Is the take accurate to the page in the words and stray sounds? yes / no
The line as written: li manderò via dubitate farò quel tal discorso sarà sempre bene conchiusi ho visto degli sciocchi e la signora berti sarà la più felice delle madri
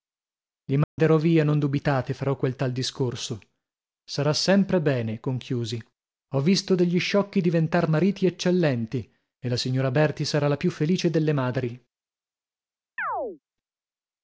no